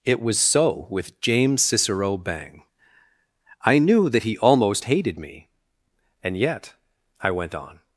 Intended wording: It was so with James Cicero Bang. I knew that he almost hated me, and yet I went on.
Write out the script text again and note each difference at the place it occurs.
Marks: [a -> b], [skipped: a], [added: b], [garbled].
It was so with James Cicero Bang. I knew that he almost hated me, and yet I went on.